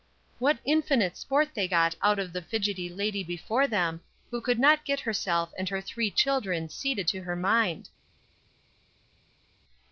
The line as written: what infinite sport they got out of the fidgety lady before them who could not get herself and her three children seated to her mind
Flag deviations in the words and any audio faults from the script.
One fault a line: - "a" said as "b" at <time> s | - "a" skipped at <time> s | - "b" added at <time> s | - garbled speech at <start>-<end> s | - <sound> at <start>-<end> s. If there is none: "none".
none